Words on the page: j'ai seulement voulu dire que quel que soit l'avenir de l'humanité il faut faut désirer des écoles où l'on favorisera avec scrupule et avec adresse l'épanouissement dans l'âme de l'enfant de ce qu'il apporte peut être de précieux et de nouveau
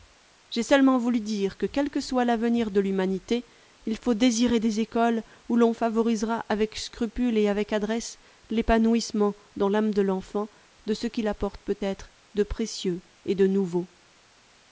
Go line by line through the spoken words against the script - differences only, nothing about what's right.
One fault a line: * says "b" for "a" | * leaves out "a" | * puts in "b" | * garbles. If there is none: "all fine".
* leaves out "faut"